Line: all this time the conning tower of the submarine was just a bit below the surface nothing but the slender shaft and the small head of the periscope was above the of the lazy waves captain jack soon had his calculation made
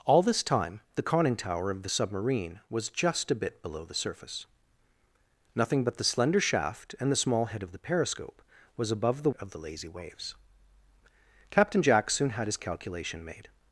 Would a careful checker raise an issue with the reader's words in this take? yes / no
no